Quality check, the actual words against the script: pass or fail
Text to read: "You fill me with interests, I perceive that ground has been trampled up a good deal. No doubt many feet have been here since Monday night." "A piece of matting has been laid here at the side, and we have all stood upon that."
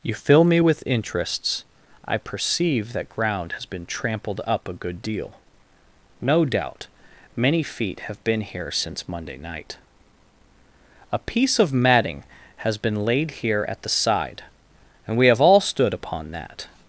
pass